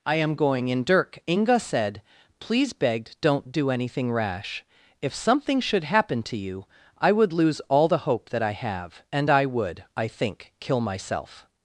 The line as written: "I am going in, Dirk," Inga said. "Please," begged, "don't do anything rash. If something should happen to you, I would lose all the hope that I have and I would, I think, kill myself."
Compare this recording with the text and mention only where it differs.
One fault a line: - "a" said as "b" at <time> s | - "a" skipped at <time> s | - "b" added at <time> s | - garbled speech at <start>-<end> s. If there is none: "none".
none